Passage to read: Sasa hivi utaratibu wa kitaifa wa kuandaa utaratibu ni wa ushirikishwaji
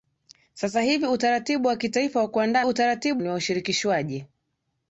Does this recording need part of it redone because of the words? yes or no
no